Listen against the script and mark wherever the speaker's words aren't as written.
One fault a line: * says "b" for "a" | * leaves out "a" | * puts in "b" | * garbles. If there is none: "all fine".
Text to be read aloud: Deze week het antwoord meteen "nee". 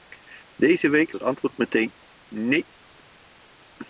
all fine